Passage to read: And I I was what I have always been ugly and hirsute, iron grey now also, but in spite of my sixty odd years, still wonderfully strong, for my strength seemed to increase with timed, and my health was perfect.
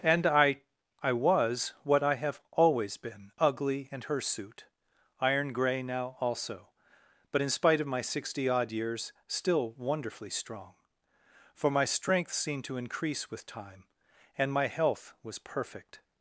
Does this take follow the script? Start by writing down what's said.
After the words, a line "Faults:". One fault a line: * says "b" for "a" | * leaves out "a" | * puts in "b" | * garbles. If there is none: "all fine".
And I I was what I have always been ugly and hirsute, iron grey now also, but in spite of my sixty odd years, still wonderfully strong, for my strength seemed to increase with time, and my health was perfect.
Faults:
* says "time" for "timed"